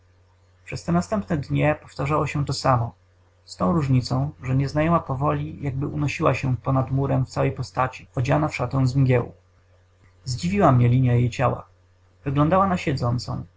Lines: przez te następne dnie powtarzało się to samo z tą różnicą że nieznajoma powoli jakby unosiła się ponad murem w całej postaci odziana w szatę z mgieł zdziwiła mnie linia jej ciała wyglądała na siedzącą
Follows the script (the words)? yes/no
yes